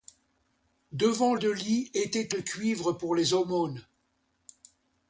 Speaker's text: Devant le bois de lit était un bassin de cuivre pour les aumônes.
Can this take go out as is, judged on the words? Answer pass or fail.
fail